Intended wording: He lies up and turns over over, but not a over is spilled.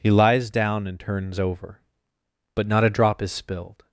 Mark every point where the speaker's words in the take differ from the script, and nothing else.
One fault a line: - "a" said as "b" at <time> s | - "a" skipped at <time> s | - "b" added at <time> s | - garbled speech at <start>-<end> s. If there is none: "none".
- "up" said as "down" at 0.5 s
- "over" skipped at 1.8 s
- "over" said as "drop" at 2.9 s